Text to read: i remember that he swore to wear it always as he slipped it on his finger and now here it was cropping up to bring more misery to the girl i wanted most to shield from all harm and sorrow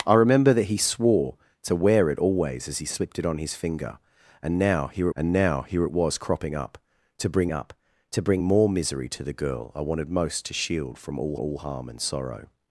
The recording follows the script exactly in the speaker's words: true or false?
false